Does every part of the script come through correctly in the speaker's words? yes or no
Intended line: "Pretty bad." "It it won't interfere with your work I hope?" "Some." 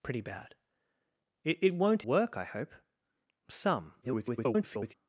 no